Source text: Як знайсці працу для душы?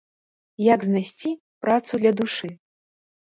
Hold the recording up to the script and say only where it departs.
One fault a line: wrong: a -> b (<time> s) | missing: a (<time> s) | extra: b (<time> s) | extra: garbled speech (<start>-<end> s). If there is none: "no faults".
no faults